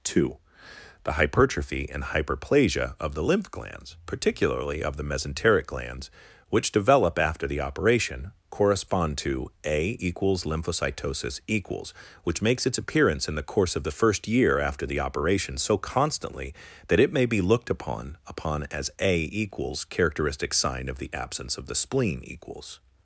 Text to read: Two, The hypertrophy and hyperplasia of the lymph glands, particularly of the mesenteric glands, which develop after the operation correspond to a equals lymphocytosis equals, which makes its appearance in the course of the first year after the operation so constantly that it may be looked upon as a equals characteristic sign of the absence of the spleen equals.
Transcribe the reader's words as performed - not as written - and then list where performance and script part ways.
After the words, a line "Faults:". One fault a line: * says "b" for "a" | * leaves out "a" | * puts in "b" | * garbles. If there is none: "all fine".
Two, The hypertrophy and hyperplasia of the lymph glands, particularly of the mesenteric glands, which develop after the operation correspond to a equals lymphocytosis equals, which makes its appearance in the course of the first year after the operation so constantly that it may be looked upon upon as a equals characteristic sign of the absence of the spleen equals.
Faults:
* puts in "upon"